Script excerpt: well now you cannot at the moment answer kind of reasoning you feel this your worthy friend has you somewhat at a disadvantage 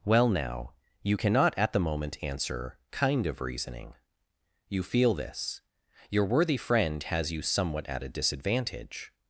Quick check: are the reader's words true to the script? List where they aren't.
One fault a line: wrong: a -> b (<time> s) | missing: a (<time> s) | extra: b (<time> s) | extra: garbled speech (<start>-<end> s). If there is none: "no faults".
no faults